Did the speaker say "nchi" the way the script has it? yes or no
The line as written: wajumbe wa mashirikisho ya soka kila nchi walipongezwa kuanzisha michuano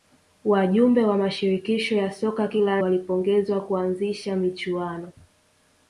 no